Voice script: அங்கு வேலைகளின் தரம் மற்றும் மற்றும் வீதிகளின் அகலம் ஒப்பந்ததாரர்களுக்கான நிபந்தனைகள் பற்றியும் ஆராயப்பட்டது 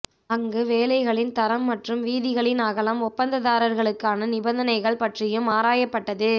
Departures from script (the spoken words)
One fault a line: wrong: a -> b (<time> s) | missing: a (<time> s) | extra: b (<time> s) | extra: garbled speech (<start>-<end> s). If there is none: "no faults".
missing: மற்றும் (2.0 s)